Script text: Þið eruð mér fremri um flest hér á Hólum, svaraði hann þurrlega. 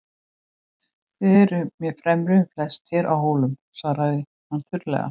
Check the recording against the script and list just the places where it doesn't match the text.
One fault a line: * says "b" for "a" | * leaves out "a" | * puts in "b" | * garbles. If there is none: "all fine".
all fine